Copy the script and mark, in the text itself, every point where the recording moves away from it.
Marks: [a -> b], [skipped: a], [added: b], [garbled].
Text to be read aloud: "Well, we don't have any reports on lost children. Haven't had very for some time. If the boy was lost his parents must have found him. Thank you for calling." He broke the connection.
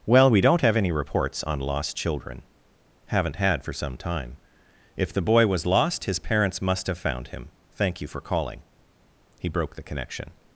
"Well, we don't have any reports on lost children. Haven't had [skipped: very] for some time. If the boy was lost his parents must have found him. Thank you for calling." He broke the connection.